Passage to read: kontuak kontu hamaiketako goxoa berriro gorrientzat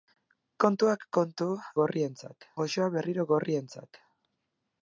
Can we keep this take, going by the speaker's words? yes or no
no